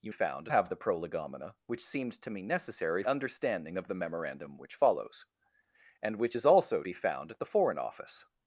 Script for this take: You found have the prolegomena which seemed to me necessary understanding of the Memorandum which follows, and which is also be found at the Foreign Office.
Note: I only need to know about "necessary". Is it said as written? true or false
true